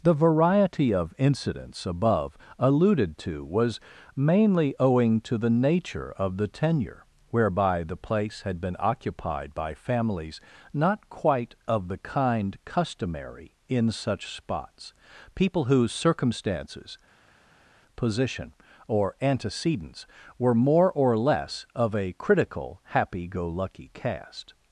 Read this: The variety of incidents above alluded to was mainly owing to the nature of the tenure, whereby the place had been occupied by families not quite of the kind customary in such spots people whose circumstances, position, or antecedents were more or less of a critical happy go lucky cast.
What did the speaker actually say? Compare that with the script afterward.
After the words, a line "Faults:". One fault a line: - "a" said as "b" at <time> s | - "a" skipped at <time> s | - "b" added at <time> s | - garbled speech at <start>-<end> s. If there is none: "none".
The variety of incidents above alluded to was mainly owing to the nature of the tenure, whereby the place had been occupied by families not quite of the kind customary in such spots people whose circumstances, position, or antecedents were more or less of a critical happy go lucky cast.
Faults:
none